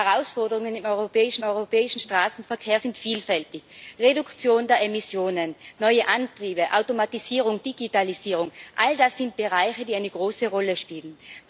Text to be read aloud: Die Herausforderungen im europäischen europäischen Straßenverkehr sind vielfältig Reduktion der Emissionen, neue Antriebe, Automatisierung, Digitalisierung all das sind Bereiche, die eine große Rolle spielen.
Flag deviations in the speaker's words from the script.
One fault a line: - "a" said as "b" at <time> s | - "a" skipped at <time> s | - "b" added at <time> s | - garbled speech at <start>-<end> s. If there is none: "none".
none